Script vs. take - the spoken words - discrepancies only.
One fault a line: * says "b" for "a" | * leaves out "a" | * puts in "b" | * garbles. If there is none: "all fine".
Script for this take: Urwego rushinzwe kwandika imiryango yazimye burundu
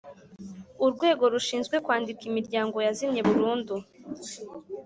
all fine